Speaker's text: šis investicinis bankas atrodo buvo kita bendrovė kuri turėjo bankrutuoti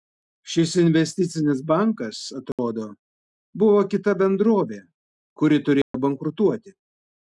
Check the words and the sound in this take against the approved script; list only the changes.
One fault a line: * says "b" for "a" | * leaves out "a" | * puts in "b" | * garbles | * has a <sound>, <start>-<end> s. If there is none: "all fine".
* has a dropout, 2.5-2.6 s
* has a dropout, 5.8-5.9 s